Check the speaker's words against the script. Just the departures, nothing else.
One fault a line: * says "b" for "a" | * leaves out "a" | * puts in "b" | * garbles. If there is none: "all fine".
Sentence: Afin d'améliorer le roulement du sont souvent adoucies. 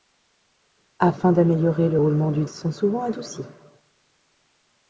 all fine